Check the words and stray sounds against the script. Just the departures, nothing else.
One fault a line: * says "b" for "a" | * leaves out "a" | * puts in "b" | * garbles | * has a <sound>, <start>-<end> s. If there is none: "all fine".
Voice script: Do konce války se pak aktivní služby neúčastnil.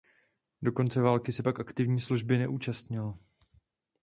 all fine